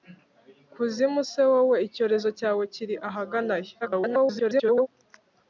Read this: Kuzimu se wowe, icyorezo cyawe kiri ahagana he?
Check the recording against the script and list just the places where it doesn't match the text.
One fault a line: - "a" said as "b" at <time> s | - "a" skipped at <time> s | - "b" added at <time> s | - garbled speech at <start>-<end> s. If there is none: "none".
- garbled speech at 3.8-4.9 s